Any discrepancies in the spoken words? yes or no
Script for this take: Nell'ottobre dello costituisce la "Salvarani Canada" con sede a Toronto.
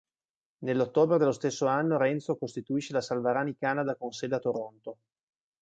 yes